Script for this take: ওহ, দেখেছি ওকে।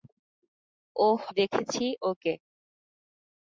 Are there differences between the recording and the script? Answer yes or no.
no